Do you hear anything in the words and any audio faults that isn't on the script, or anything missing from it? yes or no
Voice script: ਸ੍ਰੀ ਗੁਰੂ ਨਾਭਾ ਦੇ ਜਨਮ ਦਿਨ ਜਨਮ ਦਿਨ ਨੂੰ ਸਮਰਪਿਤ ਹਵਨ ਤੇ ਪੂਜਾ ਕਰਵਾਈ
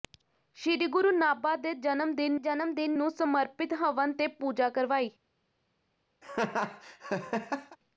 yes